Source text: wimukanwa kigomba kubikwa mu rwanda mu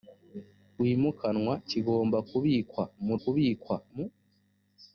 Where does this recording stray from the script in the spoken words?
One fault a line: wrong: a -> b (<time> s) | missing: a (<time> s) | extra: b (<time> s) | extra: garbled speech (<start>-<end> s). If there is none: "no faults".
wrong: rwanda -> kubikwa (3.2 s)